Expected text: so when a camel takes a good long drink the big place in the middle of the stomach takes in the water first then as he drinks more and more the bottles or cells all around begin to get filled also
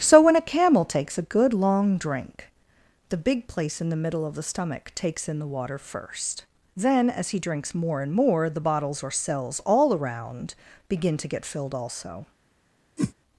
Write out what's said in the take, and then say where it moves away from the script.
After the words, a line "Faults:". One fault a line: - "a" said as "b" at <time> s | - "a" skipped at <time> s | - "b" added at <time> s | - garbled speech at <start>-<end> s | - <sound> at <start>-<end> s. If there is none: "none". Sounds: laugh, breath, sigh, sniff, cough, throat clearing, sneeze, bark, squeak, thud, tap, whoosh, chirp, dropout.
so when a camel takes a good long drink the big place in the middle of the stomach takes in the water first then as he drinks more and more the bottles or cells all around begin to get filled also
Faults:
- whoosh at 13.0-13.1 s